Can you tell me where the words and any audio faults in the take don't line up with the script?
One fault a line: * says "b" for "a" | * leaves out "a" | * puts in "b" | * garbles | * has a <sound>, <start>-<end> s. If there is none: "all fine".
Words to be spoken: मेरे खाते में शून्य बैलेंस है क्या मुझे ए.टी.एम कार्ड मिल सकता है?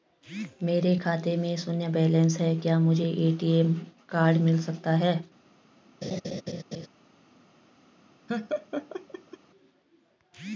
* has a laugh, 6.0-6.9 s
* has a laugh, 8.3-9.4 s